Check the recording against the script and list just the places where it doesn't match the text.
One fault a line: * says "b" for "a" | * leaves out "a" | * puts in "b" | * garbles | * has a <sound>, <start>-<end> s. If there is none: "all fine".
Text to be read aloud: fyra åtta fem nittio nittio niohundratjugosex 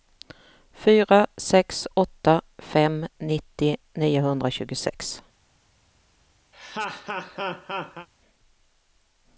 * puts in "sex"
* leaves out "nittio"
* has a laugh, 6.5-8.1 s